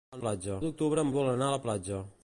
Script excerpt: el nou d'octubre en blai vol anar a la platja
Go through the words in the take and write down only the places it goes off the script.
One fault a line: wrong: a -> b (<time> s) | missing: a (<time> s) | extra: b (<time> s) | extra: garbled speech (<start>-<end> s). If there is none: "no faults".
wrong: nou -> platja (0.2 s)
missing: blai (1.1 s)